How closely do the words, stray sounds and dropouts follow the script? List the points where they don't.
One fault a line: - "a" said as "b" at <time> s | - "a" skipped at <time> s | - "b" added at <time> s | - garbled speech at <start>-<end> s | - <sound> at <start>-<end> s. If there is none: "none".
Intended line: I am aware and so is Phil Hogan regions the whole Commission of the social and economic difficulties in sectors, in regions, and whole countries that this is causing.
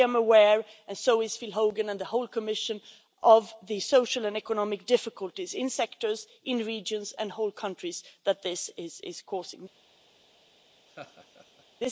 - "regions" said as "and" at 1.9 s
- laugh at 10.9-11.7 s